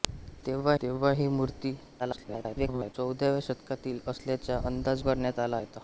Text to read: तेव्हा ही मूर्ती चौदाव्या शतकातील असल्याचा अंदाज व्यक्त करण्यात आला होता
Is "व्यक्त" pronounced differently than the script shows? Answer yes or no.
yes